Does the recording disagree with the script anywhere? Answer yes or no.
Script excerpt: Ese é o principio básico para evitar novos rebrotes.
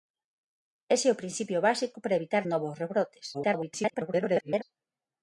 yes